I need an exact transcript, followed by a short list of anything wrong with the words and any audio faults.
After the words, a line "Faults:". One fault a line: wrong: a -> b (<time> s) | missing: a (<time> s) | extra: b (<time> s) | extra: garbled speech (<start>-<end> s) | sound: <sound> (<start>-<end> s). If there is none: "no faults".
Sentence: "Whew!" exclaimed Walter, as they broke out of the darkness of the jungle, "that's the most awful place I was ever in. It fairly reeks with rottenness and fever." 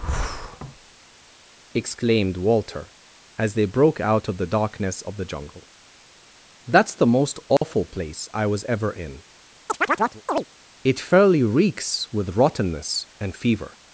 exclaimed Walter, as they broke out of the darkness of the jungle, "that's the most awful place I was ever in. It fairly reeks with rottenness and fever."
Faults:
missing: Whew (1.7 s)
sound: dropout (7.6-7.6 s)
sound: chirp (9.7-10.4 s)